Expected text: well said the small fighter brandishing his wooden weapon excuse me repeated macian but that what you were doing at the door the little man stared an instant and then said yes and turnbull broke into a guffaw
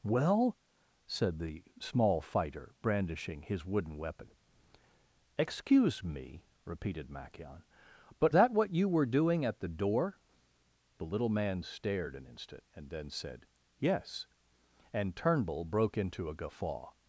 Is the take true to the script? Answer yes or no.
yes